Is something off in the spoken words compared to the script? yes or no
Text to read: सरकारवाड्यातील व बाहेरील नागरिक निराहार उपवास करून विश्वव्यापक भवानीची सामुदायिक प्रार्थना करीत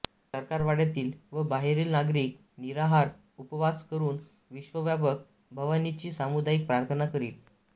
no